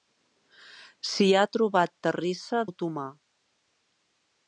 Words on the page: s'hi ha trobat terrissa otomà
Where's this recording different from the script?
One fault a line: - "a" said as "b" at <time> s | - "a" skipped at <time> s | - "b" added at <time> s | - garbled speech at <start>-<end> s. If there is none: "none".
none